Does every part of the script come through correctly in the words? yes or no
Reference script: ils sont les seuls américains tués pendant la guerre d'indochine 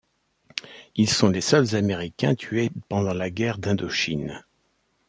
yes